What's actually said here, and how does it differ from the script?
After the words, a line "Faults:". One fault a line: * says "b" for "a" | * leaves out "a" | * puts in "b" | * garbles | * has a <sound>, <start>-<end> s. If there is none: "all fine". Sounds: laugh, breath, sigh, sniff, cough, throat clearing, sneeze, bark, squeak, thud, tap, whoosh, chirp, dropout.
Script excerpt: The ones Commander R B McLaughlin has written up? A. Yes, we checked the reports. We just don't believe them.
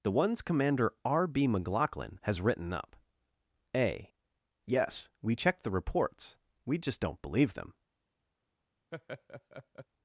The ones Commander R B McLaughlin has written up? A. Yes, we checked the reports. We just don't believe them.
Faults:
* has a laugh, 8.9-9.9 s